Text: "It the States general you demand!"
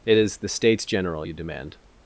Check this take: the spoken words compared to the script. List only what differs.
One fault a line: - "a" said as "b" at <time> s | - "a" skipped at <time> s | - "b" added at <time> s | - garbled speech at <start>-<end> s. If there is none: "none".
- "is" added at 0.2 s